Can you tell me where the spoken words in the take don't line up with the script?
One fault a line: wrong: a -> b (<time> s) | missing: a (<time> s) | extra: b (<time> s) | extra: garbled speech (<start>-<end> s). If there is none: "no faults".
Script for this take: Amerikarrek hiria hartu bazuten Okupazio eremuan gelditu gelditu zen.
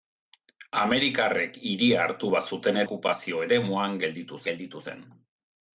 no faults